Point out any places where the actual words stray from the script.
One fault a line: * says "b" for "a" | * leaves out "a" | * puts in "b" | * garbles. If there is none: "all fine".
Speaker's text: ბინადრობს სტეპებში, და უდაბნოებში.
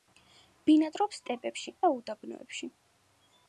all fine